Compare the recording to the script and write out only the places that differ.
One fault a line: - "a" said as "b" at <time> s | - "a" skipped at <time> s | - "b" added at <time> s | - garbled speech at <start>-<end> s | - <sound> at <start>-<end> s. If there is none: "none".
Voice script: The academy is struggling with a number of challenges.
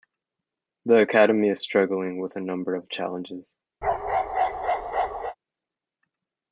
- bark at 3.8-5.4 s